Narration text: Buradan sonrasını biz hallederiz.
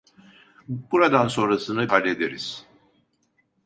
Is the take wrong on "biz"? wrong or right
wrong